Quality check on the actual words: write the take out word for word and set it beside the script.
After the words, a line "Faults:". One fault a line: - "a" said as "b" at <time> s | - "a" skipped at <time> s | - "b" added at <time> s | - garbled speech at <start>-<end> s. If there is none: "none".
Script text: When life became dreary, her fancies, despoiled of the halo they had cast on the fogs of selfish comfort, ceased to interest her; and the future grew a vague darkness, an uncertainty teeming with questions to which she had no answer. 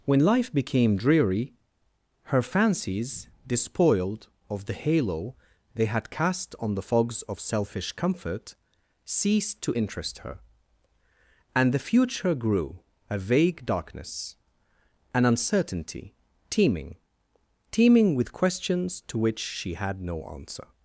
When life became dreary, her fancies, despoiled of the halo they had cast on the fogs of selfish comfort, ceased to interest her; and the future grew a vague darkness, an uncertainty teeming teeming with questions to which she had no answer.
Faults:
- "teeming" added at 17.7 s